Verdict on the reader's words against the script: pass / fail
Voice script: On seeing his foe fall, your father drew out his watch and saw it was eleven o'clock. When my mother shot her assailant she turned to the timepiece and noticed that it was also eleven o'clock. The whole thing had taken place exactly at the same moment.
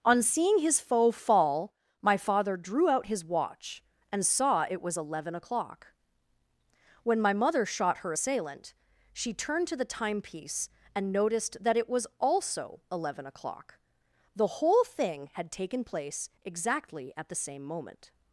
fail